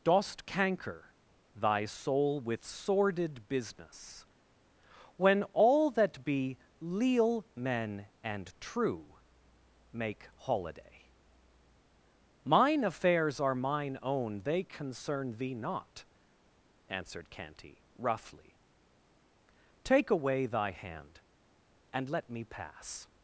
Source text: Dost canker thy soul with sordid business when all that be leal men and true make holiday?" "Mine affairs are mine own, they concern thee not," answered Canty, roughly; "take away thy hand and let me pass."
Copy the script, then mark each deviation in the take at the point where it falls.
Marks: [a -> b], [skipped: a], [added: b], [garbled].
Dost canker thy soul with sordid business when all that be leal men and true make holiday?" "Mine affairs are mine own, they concern thee not," answered Canty, roughly; "take away thy hand and let me pass."